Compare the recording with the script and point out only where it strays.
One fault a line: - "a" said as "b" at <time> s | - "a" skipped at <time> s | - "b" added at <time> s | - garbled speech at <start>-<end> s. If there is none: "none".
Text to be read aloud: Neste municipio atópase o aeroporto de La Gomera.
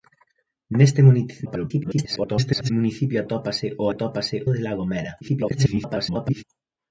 - garbled speech at 1.5-2.7 s
- "aeroporto" said as "atópase" at 3.9 s
- garbled speech at 5.2-6.4 s